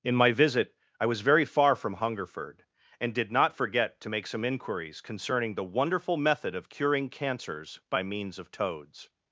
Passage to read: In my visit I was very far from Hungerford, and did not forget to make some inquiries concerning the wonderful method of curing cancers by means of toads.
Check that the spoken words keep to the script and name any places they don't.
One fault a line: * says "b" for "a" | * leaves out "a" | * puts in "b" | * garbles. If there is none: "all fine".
all fine